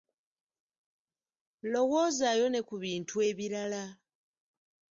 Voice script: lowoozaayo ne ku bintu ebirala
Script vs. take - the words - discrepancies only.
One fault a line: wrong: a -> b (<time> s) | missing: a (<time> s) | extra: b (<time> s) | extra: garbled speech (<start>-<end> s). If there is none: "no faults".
no faults